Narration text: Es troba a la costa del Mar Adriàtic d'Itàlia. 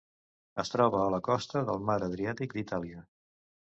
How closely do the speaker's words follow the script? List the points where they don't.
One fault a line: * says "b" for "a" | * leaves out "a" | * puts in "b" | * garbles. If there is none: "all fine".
all fine